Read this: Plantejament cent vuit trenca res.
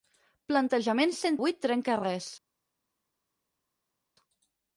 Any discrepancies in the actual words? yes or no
no